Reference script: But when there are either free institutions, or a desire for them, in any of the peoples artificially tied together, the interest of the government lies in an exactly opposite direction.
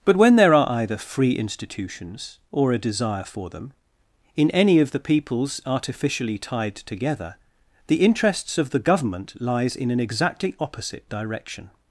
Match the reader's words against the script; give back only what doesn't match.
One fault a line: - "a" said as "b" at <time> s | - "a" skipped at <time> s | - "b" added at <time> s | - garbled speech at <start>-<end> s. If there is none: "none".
- "interest" said as "interests" at 8.0 s